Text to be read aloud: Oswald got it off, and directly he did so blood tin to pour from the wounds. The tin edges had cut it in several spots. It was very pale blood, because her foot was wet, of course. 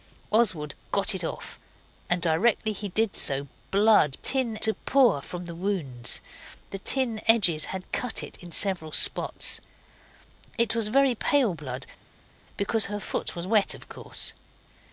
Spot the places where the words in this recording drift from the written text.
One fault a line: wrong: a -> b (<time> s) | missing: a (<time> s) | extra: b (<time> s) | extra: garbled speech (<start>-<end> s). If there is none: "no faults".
no faults